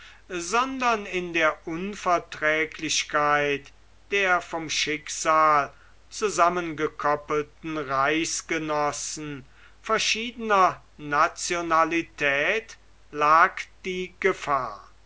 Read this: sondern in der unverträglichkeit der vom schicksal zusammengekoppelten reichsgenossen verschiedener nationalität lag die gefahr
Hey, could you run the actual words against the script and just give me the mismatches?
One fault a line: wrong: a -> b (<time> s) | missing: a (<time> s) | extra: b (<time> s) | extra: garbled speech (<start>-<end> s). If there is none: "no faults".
no faults